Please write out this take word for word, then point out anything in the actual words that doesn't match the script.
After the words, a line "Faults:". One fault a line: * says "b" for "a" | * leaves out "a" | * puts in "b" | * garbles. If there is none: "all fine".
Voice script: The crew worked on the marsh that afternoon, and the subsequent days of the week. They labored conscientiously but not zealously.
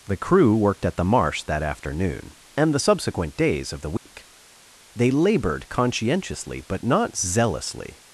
The crew worked at the marsh that afternoon, and the subsequent days of the week. They labored conscientiously but not zealously.
Faults:
* says "at" for "on"